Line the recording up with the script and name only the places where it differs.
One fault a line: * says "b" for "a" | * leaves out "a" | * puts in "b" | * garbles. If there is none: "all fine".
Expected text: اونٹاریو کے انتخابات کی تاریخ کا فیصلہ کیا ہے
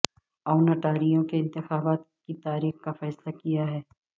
all fine